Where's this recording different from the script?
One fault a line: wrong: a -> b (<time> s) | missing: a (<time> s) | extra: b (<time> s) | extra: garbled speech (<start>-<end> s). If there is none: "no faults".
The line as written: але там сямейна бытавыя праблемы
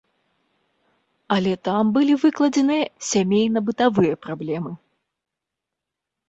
extra: былі выкладзеныя (2.0 s)